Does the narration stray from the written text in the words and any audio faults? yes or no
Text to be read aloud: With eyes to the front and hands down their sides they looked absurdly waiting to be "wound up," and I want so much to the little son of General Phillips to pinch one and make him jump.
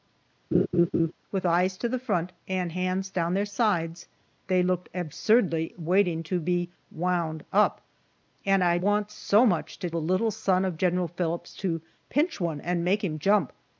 yes